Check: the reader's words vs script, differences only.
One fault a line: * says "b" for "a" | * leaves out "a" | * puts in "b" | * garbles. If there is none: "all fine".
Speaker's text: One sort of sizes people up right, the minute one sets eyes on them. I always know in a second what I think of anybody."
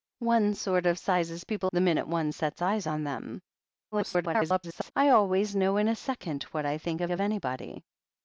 * leaves out "up right"
* garbles
* puts in "of"